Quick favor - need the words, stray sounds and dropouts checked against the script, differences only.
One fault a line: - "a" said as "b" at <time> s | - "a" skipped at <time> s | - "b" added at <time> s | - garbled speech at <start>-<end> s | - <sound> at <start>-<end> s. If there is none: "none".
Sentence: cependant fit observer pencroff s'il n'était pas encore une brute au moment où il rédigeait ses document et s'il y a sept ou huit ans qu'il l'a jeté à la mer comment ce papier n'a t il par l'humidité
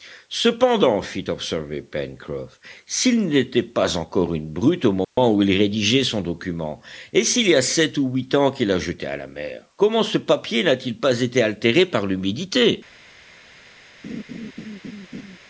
- dropout at 5.0-5.2 s
- "ses" said as "son" at 6.0 s
- "pas été altéré" added at 11.0 s
- laugh at 14.0-15.4 s